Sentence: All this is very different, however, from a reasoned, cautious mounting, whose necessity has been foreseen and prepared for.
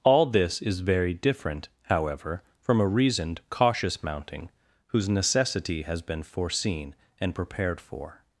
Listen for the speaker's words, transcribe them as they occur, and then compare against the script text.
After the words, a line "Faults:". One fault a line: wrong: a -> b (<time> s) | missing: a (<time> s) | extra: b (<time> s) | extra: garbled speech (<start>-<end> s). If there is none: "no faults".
All this is very different, however, from a reasoned, cautious mounting, whose necessity has been foreseen and prepared for.
Faults:
no faults